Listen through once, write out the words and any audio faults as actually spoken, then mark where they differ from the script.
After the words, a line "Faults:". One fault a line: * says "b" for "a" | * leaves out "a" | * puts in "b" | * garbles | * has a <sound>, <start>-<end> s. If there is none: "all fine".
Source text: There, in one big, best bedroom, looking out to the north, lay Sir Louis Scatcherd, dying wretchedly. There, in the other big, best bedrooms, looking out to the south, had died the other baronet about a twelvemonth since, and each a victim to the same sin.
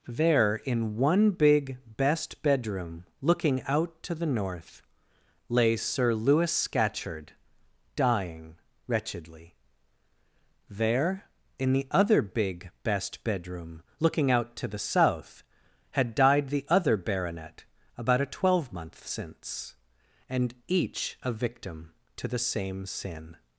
There, in one big, best bedroom, looking out to the north, lay Sir Louis Scatcherd, dying wretchedly. There, in the other big, best bedroom, looking out to the south, had died the other baronet about a twelvemonth since, and each a victim to the same sin.
Faults:
* says "bedroom" for "bedrooms"